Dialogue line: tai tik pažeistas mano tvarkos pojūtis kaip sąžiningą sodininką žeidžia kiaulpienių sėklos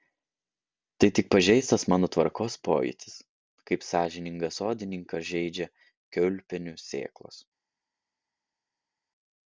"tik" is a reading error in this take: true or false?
false